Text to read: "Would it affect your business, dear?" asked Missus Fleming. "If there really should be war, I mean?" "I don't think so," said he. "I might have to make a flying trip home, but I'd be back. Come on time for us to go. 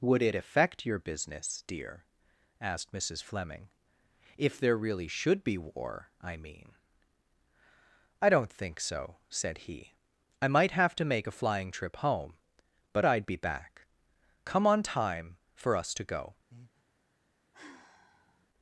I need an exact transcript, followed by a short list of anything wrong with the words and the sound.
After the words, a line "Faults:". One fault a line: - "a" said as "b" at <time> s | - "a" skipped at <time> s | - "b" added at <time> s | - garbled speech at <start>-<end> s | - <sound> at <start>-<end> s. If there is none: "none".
"Would it affect your business, dear?" asked Missus Fleming. "If there really should be war, I mean?" "I don't think so," said he. "I might have to make a flying trip home, but I'd be back. Come on time for us to go.
Faults:
- breath at 16.5-16.8 s
- sigh at 17.5-18.5 s